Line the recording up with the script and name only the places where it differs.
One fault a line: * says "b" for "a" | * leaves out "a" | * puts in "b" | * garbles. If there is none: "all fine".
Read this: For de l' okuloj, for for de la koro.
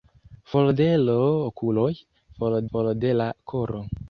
all fine